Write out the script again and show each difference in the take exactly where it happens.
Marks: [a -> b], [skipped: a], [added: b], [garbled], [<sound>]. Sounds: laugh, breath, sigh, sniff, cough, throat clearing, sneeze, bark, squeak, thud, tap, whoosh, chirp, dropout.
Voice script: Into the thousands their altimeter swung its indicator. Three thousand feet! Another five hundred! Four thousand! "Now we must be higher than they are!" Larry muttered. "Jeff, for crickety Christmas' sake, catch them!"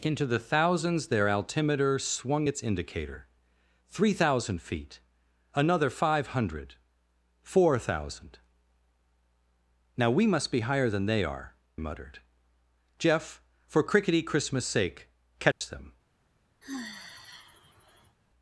Into the thousands their altimeter swung its indicator. Three thousand feet! Another five hundred! Four thousand! "Now we must be higher than they are!" [skipped: Larry] muttered. "Jeff, for crickety Christmas' sake, catch [dropout] them!" [sigh]